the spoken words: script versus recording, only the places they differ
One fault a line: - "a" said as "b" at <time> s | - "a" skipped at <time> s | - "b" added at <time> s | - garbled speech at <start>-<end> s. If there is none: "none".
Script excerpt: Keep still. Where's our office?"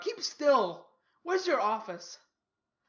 - "our" said as "your" at 1.4 s